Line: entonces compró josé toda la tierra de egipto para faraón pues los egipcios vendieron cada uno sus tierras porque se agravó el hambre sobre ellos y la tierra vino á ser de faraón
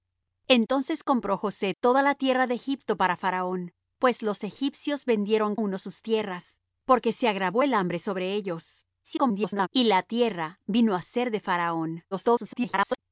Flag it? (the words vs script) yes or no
yes